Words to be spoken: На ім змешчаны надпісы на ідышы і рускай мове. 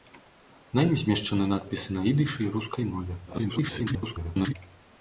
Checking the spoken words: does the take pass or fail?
fail